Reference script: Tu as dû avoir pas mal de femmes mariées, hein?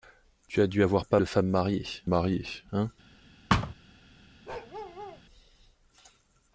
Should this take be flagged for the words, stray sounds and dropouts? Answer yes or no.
yes